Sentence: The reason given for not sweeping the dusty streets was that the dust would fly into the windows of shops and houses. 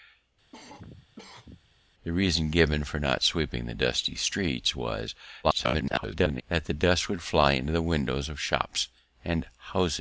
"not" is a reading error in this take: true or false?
false